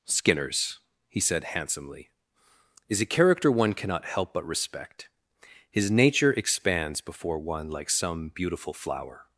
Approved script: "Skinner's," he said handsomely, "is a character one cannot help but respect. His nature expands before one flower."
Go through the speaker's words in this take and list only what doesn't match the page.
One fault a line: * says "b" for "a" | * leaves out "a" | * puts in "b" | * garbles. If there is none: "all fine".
* puts in "like some beautiful"